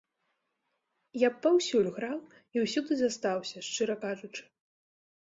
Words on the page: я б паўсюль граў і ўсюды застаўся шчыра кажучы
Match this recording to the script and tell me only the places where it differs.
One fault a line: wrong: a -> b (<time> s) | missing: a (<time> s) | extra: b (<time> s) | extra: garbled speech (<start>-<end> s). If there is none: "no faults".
no faults